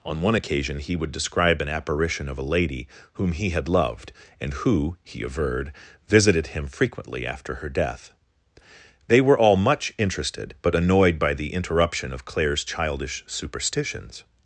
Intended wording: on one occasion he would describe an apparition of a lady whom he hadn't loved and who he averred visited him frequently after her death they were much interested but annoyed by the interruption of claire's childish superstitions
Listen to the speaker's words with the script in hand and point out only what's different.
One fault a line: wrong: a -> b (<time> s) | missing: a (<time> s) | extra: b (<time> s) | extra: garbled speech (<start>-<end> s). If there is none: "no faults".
wrong: hadn't -> had (3.5 s)
extra: all (9.4 s)